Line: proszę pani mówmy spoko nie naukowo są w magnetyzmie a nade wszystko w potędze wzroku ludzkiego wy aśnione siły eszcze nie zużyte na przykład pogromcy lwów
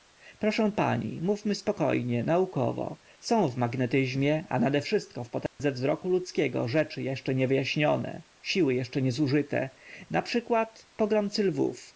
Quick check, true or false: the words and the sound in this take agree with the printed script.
false